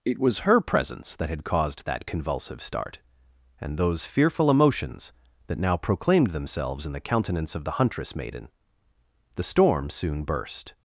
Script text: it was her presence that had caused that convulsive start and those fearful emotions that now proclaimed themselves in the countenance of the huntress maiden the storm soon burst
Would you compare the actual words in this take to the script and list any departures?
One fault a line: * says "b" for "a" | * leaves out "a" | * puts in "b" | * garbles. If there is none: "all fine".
all fine